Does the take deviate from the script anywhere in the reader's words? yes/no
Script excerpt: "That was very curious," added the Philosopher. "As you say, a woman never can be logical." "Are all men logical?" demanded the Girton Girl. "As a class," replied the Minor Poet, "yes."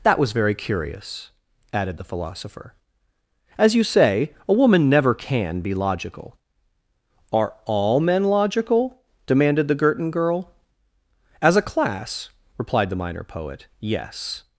no